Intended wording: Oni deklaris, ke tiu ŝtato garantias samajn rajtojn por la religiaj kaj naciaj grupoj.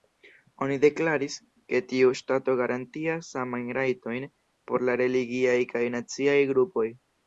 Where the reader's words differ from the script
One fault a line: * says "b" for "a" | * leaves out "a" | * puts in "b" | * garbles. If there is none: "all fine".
all fine